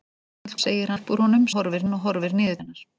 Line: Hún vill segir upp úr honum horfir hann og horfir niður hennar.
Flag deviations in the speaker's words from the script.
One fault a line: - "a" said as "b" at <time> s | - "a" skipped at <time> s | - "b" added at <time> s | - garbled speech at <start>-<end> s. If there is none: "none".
none